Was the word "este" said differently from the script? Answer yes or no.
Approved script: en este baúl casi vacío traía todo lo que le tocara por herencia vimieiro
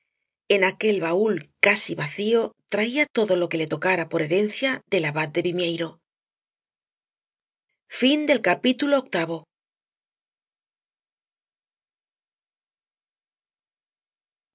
yes